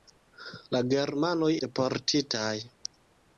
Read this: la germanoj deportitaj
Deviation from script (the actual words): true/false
false